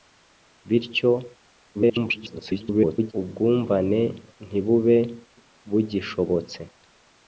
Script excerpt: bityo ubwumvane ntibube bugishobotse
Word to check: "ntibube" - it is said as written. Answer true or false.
true